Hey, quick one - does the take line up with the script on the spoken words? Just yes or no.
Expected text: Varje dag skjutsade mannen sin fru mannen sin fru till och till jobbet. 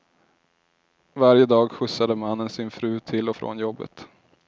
no